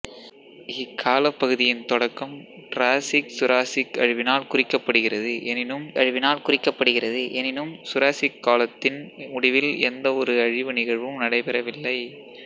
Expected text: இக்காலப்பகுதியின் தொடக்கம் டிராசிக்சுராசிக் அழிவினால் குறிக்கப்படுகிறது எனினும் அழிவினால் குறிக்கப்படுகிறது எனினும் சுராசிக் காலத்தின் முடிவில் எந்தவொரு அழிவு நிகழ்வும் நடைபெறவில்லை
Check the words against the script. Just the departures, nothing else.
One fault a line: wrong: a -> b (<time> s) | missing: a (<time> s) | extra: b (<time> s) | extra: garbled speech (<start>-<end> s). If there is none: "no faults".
no faults